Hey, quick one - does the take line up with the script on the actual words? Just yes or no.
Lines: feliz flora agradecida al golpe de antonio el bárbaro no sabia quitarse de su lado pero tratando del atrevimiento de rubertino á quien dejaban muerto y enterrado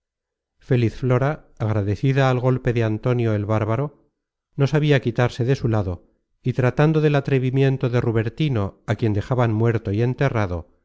no